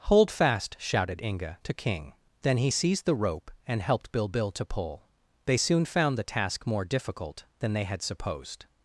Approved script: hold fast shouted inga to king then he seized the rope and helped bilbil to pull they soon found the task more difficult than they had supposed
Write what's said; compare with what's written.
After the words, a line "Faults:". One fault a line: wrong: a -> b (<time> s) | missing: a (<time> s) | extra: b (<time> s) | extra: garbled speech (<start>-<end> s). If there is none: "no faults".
hold fast shouted inga to king then he seized the rope and helped bilbil to pull they soon found the task more difficult than they had supposed
Faults:
no faults